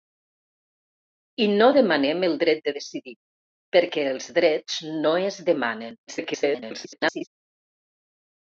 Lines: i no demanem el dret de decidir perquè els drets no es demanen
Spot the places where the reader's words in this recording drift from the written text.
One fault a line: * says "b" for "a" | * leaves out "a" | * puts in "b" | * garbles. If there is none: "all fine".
* garbles